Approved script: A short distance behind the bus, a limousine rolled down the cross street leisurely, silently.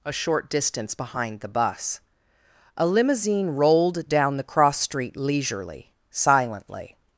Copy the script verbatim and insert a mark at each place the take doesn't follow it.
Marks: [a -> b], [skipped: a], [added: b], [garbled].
A short distance behind the bus, a limousine rolled down the cross street leisurely, silently.